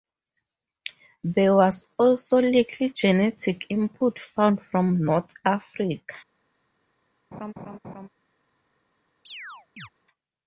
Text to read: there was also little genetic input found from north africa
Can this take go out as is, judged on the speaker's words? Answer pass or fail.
pass